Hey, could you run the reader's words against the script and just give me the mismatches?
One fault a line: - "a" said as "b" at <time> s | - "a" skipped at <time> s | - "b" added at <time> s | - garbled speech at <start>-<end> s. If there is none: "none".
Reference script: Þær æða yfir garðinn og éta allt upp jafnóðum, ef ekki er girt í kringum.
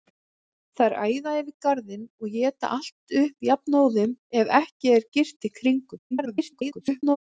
- garbled speech at 6.1-7.2 s